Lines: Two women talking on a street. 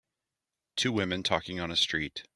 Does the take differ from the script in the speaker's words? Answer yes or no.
no